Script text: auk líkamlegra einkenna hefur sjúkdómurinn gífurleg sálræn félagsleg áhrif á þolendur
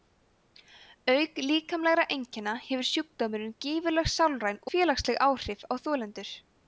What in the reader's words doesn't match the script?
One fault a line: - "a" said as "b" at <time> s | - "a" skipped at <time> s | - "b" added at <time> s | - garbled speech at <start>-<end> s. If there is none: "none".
none